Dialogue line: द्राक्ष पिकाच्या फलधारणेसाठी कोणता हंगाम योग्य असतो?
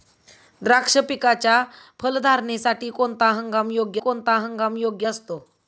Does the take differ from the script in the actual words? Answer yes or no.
yes